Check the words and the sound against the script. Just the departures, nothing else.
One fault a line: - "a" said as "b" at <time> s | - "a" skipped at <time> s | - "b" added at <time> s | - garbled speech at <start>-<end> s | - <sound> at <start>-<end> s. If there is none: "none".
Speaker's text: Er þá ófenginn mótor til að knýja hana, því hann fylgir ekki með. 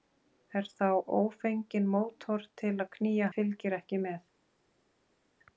- "hana því hann" skipped at 3.3 s